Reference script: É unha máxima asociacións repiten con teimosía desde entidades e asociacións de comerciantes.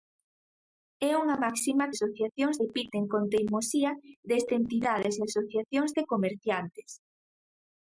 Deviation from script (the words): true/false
false